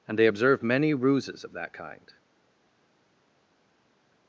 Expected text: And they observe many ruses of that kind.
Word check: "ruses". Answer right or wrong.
right